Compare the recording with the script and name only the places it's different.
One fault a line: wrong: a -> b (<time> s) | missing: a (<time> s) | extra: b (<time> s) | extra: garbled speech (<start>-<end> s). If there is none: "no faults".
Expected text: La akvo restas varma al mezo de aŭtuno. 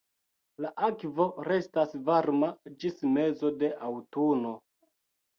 wrong: al -> ĝis (2.8 s)